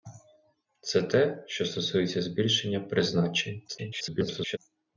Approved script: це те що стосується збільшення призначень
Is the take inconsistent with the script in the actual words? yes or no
yes